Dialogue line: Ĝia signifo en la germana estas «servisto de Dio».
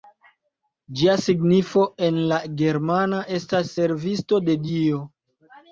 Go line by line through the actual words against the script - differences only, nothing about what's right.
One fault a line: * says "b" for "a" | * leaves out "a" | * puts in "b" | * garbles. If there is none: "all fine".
all fine